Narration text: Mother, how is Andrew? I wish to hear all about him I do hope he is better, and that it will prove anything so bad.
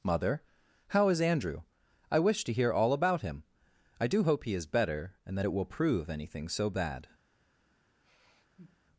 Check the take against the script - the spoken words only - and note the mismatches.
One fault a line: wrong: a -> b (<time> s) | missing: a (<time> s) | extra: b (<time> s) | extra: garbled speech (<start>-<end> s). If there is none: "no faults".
no faults